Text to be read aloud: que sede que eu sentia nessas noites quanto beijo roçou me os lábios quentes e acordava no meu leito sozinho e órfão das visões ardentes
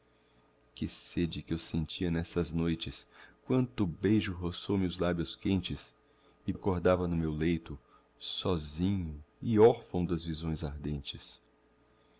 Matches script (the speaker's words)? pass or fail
pass